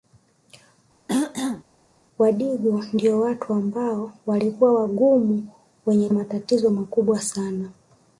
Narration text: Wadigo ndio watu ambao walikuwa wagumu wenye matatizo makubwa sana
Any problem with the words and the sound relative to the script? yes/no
yes